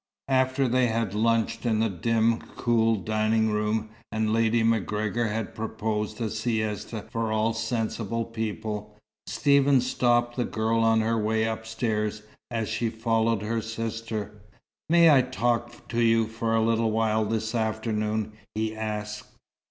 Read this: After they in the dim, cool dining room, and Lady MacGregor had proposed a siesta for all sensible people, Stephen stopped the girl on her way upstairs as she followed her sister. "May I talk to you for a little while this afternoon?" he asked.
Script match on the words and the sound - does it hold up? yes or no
no